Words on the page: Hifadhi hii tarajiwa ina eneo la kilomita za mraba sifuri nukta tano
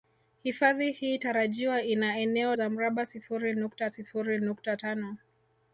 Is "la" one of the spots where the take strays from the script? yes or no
yes